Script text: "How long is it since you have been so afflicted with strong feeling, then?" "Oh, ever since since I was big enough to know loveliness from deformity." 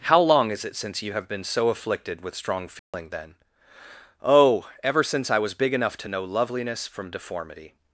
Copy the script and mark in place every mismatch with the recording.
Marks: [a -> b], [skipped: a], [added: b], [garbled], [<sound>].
"How long is it since you have been so afflicted with strong feeling, [dropout] then?" "Oh, ever since [skipped: since] I was big enough to know loveliness from deformity."